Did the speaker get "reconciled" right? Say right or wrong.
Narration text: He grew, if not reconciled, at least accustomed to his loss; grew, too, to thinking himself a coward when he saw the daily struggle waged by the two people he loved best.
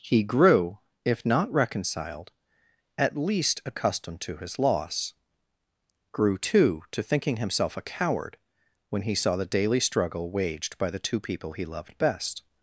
right